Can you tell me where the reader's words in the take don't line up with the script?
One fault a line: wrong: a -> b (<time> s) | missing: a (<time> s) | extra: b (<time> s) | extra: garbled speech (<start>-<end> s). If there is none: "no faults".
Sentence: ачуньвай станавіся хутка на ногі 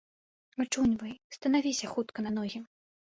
no faults